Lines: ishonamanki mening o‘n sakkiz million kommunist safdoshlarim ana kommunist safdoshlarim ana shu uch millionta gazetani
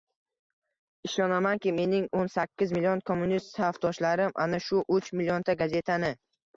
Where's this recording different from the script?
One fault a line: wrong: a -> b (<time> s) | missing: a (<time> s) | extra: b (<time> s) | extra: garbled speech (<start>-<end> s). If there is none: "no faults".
missing: kommunist safdoshlarim ana (4.7 s)